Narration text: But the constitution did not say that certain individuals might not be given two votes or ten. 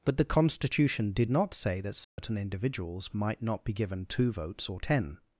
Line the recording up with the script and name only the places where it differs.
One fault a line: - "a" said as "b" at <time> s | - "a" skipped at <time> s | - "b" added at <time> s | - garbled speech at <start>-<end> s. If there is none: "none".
none